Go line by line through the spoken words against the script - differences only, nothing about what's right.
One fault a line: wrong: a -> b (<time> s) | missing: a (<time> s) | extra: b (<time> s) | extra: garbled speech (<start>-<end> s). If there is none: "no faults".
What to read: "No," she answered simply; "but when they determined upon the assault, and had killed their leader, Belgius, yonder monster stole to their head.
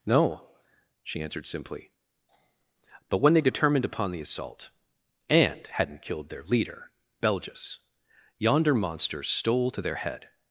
wrong: had -> hadn't (5.7 s)